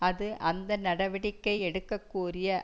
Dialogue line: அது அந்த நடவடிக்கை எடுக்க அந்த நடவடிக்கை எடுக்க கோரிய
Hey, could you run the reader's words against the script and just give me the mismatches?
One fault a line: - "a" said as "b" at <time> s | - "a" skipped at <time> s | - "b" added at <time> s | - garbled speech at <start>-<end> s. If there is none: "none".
- "அந்த நடவடிக்கை எடுக்க" skipped at 2.0 s